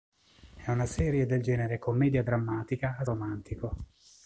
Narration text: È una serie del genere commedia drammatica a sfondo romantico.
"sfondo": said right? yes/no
no